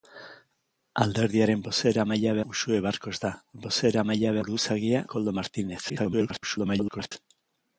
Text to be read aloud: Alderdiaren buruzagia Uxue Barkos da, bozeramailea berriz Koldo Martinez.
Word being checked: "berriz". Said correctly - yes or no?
no